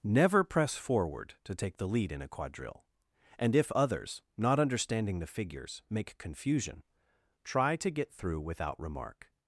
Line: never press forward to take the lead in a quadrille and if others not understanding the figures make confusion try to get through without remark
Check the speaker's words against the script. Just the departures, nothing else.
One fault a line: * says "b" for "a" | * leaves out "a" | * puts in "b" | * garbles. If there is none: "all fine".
all fine